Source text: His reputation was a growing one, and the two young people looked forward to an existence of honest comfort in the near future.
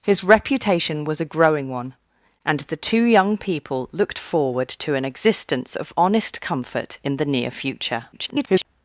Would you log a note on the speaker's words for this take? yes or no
yes